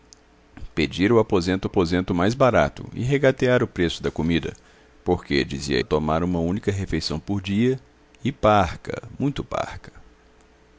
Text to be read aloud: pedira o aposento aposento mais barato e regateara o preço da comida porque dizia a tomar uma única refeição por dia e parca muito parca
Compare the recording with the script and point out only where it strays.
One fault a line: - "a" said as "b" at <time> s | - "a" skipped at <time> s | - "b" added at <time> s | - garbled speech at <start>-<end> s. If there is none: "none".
none